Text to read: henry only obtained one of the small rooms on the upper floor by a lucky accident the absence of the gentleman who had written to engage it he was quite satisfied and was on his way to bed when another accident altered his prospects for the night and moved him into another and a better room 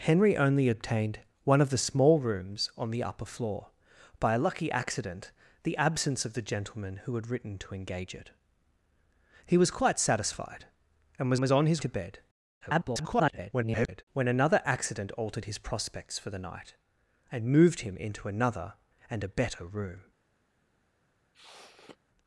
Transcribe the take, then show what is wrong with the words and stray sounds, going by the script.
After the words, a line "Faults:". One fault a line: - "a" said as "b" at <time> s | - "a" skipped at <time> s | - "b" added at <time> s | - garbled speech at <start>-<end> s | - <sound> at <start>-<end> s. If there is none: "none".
henry only obtained one of the small rooms on the upper floor by a lucky accident the absence of the gentleman who had written to engage it he was quite satisfied and was was on his to bed [garbled] when another accident altered his prospects for the night and moved him into another and a better room
Faults:
- "was" added at 11.4 s
- "way" skipped at 11.8 s
- garbled speech at 12.6-14.0 s
- sniff at 21.3-22.0 s